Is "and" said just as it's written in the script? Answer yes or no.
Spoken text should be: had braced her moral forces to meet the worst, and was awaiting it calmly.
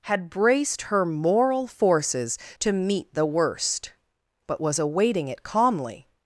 no